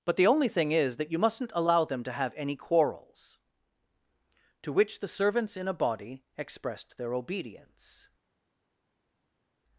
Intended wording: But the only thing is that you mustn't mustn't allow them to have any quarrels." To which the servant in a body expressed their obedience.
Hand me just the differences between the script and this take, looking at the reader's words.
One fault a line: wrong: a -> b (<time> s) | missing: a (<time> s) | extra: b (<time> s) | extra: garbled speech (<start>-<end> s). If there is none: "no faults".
missing: mustn't (1.5 s)
wrong: servant -> servants (5.1 s)